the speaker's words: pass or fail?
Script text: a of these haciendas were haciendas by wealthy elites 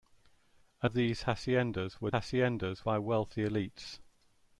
pass